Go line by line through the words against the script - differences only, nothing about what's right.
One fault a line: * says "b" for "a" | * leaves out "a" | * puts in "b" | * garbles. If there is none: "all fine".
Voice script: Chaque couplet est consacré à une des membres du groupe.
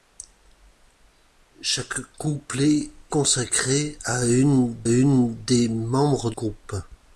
* leaves out "est"
* puts in "une"
* leaves out "du"